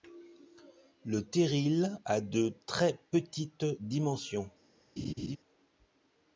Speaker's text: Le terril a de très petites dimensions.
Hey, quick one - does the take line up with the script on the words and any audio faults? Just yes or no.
no